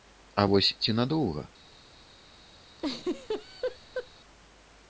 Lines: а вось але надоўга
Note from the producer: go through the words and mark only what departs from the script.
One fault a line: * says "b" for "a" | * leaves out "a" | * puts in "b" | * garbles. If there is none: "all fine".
* says "ці" for "але"